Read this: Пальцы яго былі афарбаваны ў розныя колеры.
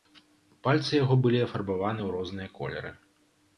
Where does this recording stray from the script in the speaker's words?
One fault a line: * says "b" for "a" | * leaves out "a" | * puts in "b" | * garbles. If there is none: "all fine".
all fine